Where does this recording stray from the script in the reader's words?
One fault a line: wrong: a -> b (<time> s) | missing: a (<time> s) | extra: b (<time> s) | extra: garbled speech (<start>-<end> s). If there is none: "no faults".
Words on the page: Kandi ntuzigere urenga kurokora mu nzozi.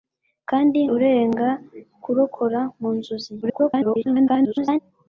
missing: ntuzigere (0.8 s)
extra: garbled speech (3.4-4.8 s)